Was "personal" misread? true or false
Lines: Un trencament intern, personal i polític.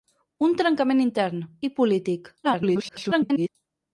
true